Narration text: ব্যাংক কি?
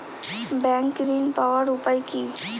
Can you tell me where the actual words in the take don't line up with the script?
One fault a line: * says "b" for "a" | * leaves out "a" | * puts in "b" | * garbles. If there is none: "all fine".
* puts in "ঋণ পাওয়ার উপায়"